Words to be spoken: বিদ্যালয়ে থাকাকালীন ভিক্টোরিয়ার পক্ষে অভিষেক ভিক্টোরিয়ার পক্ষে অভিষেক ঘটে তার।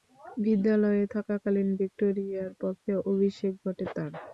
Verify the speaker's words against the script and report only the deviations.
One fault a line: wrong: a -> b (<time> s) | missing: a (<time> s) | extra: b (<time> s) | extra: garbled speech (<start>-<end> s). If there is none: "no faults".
missing: ভিক্টোরিয়ার পক্ষে অভিষেক (3.5 s)